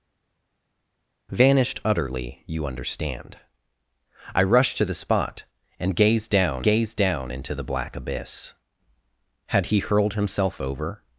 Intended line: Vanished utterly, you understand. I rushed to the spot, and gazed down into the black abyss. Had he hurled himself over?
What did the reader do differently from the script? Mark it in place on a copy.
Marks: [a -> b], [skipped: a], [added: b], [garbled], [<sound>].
Vanished utterly, you understand. I rushed to the spot, and gazed down [added: gazed down] into the black abyss. Had he hurled himself over?